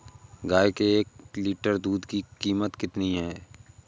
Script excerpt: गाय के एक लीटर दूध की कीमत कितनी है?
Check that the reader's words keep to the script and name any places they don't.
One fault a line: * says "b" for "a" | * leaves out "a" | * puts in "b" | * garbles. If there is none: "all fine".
all fine